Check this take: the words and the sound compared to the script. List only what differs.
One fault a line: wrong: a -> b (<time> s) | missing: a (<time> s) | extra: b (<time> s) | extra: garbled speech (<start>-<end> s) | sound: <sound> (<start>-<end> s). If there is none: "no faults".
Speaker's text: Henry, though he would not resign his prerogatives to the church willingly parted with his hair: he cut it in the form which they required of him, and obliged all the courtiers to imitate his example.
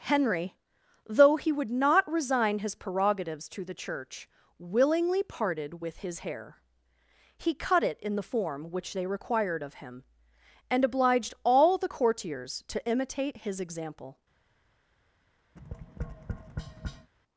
sound: tap (15.6-17.1 s)